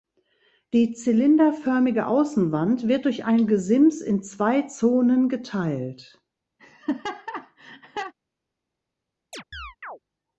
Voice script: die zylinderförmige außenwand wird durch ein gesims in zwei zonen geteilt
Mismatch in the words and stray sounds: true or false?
true